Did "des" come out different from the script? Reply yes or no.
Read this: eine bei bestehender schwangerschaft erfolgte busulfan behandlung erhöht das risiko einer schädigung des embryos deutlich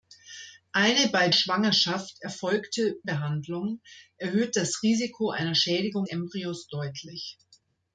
yes